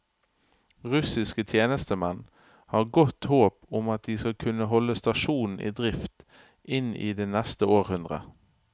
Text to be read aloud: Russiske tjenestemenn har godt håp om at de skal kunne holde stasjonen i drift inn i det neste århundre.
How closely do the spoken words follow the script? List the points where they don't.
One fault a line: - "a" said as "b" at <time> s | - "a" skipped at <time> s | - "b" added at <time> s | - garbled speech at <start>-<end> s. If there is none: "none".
none